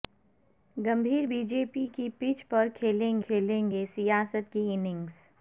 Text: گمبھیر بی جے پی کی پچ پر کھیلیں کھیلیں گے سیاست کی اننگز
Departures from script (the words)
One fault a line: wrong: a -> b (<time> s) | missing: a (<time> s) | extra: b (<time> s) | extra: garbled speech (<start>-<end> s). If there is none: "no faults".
no faults